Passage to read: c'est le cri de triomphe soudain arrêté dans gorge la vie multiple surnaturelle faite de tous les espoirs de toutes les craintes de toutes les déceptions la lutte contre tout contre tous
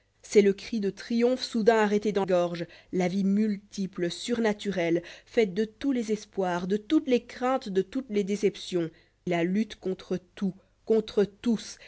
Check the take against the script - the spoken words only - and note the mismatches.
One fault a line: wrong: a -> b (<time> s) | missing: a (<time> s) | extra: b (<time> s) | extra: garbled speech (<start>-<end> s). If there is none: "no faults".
no faults